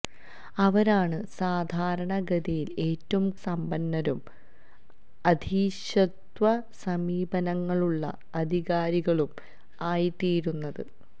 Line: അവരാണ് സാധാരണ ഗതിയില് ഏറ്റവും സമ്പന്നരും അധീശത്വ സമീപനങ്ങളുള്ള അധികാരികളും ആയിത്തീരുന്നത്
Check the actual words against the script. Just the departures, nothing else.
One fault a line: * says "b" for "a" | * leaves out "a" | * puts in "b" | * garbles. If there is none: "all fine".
all fine